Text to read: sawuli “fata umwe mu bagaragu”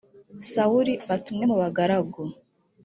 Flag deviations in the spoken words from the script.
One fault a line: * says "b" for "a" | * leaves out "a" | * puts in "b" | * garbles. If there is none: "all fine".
all fine